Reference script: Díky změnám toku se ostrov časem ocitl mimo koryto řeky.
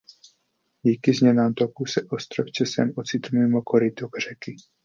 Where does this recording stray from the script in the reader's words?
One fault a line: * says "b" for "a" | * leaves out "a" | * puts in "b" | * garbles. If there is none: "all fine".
all fine